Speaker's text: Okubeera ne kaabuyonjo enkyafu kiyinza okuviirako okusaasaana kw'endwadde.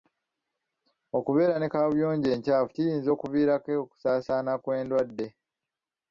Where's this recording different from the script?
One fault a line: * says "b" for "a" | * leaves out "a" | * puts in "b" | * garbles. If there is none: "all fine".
all fine